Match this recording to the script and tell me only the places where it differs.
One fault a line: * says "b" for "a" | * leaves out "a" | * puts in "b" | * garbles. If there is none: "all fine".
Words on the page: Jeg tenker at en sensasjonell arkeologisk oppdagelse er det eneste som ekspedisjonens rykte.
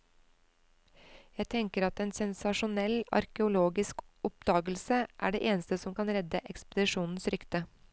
* puts in "kan redde"